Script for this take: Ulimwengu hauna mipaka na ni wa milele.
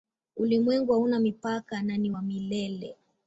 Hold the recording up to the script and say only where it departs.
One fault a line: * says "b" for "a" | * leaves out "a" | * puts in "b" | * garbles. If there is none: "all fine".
all fine